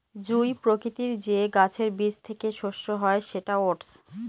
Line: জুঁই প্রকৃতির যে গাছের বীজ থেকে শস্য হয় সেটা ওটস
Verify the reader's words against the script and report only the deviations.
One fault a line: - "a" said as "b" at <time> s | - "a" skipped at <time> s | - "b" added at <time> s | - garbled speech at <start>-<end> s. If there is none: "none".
none